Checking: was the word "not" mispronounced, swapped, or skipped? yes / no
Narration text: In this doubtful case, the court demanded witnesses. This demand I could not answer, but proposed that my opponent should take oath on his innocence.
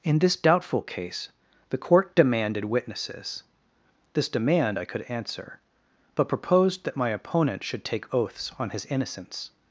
yes